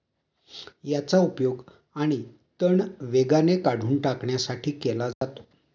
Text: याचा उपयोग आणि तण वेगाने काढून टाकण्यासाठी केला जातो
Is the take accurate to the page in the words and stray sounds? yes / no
no